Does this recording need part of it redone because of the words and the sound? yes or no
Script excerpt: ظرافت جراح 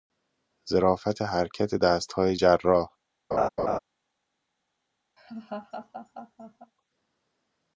yes